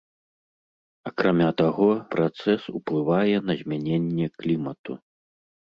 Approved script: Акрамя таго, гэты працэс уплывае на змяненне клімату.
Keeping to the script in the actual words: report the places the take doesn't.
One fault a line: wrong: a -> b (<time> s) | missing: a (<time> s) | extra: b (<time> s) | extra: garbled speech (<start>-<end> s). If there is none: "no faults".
missing: гэты (1.9 s)